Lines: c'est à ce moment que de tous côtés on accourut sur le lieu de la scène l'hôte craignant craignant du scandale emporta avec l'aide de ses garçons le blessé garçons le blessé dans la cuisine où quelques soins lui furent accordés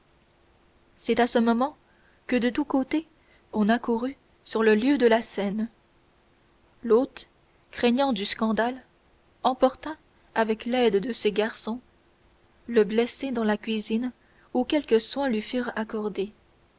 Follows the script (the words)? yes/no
no